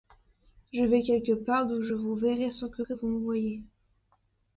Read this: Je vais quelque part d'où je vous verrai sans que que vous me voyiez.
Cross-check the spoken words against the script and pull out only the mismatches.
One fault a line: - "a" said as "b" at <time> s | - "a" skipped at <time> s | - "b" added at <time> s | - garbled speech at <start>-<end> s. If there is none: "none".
none